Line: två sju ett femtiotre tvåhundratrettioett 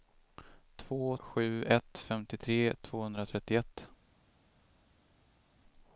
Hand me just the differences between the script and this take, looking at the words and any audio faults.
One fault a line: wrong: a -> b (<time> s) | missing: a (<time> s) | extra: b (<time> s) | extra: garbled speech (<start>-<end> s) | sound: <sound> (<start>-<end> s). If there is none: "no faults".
no faults